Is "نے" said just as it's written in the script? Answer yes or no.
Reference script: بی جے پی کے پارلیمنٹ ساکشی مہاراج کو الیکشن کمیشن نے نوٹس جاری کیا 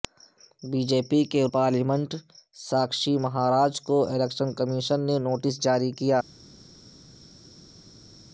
yes